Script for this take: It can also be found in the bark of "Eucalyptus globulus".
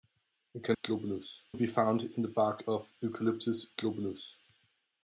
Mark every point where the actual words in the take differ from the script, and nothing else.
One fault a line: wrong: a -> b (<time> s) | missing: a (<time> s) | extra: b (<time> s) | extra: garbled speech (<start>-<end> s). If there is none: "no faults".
wrong: also -> globulus (0.7 s)